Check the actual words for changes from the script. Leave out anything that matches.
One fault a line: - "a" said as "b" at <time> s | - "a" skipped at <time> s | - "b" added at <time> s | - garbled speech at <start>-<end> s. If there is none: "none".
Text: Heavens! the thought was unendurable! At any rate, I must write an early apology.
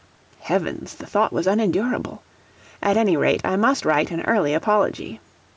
none